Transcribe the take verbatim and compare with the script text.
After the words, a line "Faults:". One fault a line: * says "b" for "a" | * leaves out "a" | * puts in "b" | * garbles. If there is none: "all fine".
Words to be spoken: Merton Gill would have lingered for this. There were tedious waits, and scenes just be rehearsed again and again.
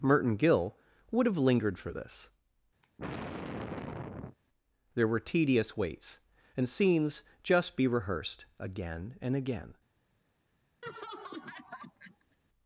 Merton Gill would have lingered for this. There were tedious waits, and scenes just be rehearsed again and again.
Faults:
all fine